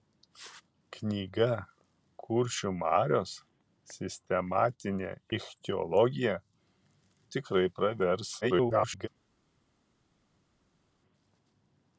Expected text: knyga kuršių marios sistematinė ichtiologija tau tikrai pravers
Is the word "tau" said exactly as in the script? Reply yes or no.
no